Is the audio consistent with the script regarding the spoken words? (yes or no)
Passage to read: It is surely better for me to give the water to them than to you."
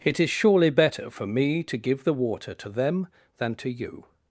yes